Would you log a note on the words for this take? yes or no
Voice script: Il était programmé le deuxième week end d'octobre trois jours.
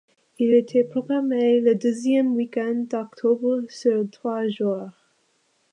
yes